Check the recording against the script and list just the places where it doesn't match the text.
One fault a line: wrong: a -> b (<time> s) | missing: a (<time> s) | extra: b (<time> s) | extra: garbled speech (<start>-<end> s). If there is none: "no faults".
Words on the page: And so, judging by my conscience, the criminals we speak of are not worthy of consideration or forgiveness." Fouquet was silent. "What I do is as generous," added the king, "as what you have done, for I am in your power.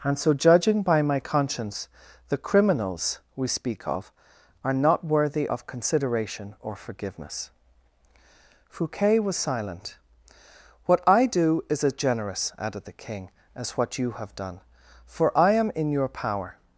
no faults